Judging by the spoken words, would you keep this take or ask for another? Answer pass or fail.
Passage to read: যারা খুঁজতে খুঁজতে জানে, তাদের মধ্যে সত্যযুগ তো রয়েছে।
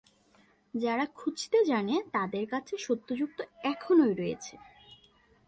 fail